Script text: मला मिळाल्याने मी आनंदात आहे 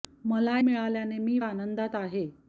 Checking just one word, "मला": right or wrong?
right